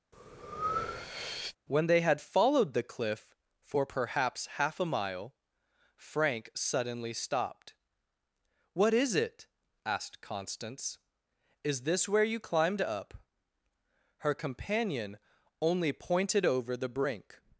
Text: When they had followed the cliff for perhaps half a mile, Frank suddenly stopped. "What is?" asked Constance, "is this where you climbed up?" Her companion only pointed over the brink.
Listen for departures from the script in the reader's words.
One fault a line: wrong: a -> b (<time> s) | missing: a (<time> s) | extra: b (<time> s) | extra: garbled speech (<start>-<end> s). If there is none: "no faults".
extra: it (9.2 s)